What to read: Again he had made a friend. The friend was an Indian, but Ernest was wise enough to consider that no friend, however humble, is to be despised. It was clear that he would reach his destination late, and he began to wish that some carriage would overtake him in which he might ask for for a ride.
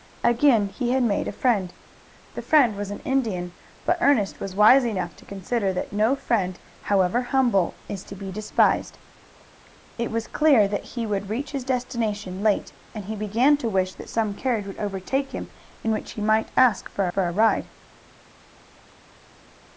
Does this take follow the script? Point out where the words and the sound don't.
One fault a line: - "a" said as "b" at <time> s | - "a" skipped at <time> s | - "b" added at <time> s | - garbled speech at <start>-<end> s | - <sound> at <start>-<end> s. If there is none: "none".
none